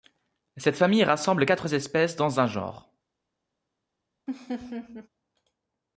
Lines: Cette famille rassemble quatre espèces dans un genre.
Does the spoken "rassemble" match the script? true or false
true